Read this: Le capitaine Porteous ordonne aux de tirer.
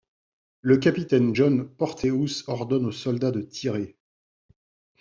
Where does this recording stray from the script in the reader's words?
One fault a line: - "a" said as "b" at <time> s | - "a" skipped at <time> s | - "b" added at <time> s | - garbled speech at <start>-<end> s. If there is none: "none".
- "John" added at 1.3 s
- "soldats" added at 2.9 s